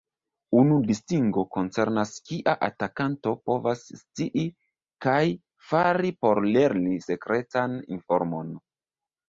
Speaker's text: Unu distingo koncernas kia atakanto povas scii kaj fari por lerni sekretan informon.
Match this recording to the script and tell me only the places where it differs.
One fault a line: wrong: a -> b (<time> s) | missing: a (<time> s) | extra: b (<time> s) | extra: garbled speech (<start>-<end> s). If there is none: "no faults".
no faults